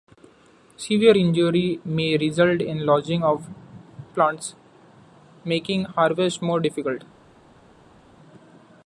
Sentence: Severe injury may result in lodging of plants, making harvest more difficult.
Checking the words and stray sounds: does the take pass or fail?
pass